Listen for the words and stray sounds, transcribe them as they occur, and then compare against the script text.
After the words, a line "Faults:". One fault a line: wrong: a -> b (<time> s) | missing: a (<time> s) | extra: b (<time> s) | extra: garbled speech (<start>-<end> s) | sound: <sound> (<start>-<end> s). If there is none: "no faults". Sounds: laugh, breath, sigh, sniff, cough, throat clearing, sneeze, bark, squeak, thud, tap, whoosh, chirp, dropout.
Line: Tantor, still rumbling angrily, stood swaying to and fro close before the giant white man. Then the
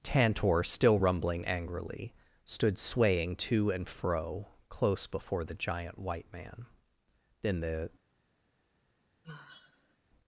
Tantor, still rumbling angrily, stood swaying to and fro close before the giant white man. Then the
Faults:
sound: sigh (9.2-10.0 s)